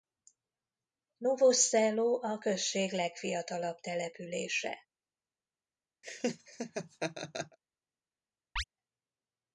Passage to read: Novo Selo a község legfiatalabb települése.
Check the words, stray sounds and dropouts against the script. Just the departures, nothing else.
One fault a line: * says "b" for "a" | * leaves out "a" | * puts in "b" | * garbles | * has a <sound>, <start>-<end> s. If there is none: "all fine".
* has a laugh, 6.0-7.6 s
* has a chirp, 8.6-8.6 s